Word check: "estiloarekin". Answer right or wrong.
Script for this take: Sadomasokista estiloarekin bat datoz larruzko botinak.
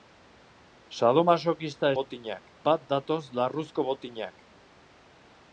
wrong